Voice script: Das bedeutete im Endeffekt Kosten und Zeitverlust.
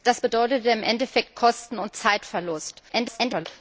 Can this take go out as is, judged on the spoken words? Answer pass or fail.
fail